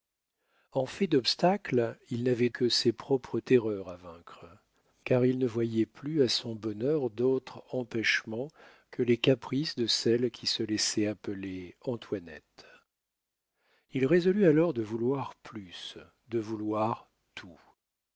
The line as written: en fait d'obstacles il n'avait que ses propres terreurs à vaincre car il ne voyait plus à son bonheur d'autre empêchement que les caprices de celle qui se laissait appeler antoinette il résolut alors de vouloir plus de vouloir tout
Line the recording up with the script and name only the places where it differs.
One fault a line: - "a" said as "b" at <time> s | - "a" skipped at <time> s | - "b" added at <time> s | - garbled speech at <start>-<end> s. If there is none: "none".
none